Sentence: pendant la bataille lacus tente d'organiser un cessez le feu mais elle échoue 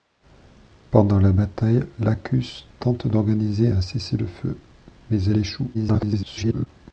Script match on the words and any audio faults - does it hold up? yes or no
no